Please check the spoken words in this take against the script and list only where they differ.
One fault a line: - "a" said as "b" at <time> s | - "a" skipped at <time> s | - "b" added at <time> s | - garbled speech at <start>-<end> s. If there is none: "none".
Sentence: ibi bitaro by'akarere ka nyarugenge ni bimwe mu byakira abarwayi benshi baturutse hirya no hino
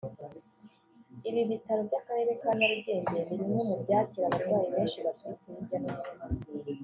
none